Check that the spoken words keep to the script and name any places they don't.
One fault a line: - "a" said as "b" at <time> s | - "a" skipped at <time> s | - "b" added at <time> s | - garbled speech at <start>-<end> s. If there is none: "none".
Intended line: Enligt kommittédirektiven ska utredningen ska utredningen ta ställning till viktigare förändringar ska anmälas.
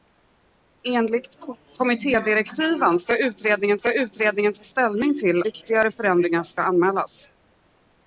none